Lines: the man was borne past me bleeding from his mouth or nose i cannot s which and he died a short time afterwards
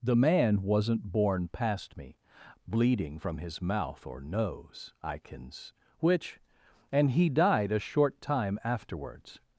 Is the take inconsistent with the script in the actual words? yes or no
yes